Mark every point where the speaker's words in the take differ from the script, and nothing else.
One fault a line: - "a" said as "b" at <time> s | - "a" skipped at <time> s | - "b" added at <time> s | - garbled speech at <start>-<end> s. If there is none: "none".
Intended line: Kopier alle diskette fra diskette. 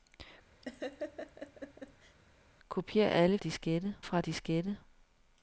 none